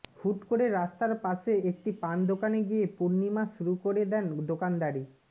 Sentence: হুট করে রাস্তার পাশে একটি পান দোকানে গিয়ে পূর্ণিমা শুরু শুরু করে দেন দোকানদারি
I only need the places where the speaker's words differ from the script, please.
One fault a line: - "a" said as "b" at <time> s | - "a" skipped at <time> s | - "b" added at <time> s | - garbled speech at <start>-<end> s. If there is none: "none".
- "শুরু" skipped at 3.7 s